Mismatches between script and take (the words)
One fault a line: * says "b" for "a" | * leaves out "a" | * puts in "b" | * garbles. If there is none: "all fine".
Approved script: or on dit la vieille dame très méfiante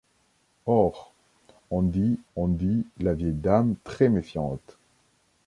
* puts in "on dit"